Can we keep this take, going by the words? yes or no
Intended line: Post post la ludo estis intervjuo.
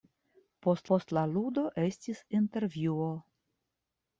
yes